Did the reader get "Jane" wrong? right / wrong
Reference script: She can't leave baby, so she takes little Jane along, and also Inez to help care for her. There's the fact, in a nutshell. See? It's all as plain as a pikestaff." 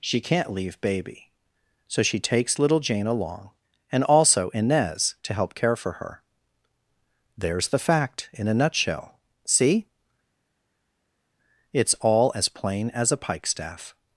right